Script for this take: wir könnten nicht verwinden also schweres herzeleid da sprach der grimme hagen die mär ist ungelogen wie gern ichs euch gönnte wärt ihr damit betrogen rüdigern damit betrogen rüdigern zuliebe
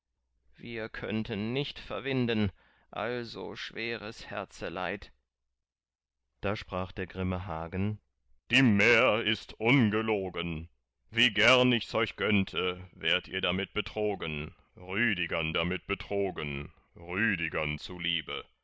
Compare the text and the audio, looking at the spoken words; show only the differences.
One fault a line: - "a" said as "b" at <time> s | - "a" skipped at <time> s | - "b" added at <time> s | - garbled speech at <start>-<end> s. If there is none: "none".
none